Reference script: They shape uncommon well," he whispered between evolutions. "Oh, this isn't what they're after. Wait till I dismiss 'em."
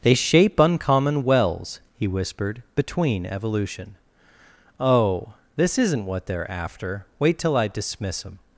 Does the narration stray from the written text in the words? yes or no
yes